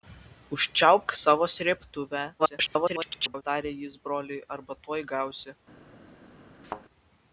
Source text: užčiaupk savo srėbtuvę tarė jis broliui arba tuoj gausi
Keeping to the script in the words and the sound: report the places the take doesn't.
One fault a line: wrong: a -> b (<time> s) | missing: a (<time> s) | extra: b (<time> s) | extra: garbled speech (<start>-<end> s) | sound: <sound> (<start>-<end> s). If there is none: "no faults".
extra: garbled speech (2.4-3.4 s)
sound: thud (6.6-6.8 s)